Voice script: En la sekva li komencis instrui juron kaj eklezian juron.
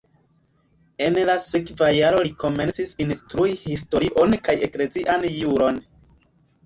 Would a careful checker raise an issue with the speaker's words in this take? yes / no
yes